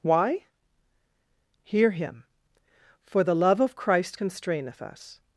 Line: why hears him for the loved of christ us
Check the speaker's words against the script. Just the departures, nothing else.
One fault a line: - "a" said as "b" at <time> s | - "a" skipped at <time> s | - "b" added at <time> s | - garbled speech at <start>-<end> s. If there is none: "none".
- "hears" said as "hear" at 1.6 s
- "loved" said as "love" at 3.4 s
- "constraineth" added at 4.1 s